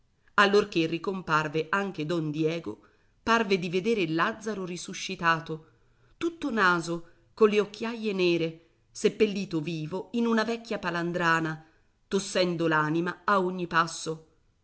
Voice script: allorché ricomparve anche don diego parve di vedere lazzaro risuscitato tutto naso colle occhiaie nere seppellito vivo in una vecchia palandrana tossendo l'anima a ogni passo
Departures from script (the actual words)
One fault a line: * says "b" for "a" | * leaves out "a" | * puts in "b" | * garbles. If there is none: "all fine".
all fine